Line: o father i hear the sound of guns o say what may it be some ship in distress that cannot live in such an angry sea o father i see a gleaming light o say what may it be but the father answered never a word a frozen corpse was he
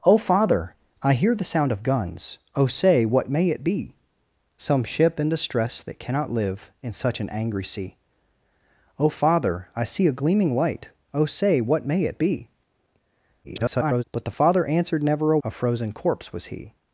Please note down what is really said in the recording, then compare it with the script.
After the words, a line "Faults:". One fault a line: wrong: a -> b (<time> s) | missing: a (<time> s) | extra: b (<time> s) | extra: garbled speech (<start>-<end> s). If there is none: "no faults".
o father i hear the sound of guns o say what may it be some ship in distress that cannot live in such an angry sea o father i see a gleaming light o say what may it be [garbled] but the father answered never a a frozen corpse was he
Faults:
extra: garbled speech (13.4-14.0 s)
missing: word (15.4 s)